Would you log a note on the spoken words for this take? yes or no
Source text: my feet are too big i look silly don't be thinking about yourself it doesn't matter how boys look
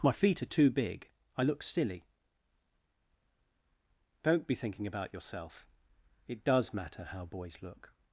yes